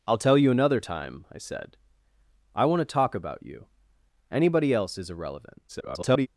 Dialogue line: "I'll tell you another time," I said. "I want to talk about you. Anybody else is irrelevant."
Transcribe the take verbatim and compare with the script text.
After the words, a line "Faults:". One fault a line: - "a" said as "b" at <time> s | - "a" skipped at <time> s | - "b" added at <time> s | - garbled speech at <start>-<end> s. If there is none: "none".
"I'll tell you another time," I said. "I want to talk about you. Anybody else is irrelevant." [garbled]
Faults:
- garbled speech at 5.7-6.3 s